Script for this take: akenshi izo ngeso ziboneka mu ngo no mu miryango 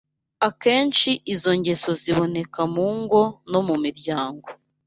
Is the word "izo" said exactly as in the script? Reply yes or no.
yes